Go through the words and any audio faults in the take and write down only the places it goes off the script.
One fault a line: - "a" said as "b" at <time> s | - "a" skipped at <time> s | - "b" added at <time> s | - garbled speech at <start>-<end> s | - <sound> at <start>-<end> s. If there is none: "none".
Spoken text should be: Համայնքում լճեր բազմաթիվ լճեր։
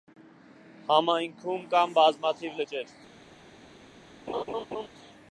- "լճեր" said as "կան" at 1.8 s
- laugh at 4.3-4.9 s